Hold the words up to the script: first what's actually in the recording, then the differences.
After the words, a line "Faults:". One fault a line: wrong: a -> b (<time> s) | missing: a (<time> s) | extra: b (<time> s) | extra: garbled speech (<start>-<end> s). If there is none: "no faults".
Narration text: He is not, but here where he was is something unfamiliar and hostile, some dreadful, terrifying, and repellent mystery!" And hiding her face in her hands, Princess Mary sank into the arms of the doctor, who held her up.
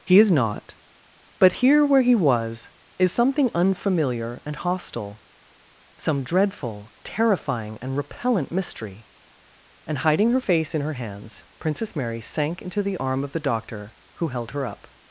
He is not, but here where he was is something unfamiliar and hostile, some dreadful, terrifying, and repellent mystery!" And hiding her face in her hands, Princess Mary sank into the arm of the doctor, who held her up.
Faults:
wrong: arms -> arm (13.0 s)